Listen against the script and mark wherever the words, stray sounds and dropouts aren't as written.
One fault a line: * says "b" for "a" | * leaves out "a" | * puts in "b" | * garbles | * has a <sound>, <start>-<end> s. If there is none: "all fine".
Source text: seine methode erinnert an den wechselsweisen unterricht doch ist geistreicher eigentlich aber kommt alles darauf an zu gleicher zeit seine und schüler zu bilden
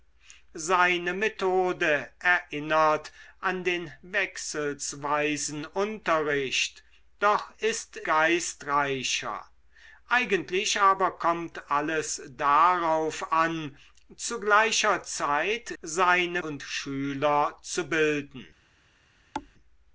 * has a thud, 19.3-19.5 s